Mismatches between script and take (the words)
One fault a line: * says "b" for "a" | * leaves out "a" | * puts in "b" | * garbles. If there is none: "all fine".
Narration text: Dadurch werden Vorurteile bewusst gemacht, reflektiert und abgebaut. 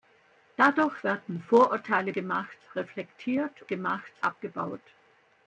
* leaves out "bewusst"
* says "gemacht" for "und"